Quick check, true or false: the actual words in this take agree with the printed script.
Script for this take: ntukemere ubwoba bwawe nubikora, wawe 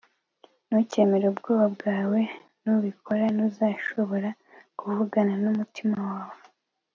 false